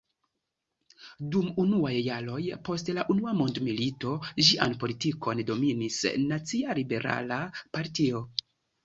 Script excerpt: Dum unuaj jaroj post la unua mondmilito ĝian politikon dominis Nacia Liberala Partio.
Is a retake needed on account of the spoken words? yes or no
no